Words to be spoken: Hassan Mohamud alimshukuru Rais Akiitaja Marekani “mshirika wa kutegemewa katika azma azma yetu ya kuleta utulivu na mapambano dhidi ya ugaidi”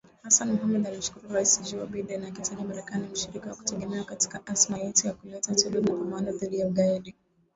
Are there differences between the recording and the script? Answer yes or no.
yes